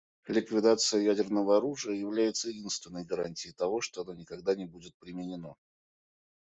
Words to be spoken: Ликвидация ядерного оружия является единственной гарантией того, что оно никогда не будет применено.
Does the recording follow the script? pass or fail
pass